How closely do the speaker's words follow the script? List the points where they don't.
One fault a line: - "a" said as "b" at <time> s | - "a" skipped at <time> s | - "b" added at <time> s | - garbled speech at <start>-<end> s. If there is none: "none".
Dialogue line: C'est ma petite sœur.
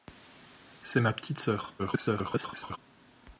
- garbled speech at 1.8-2.8 s